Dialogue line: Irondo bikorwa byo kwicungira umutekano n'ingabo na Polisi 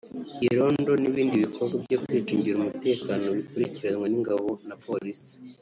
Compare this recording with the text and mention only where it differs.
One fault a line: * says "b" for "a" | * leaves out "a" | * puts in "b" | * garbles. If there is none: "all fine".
* puts in "n'ibindi"
* puts in "bikurikiranwa"